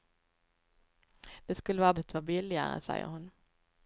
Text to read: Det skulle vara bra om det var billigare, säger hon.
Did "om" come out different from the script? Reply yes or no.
yes